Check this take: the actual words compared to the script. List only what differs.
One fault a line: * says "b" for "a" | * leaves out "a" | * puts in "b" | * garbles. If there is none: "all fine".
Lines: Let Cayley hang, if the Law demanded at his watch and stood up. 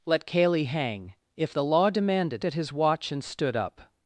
all fine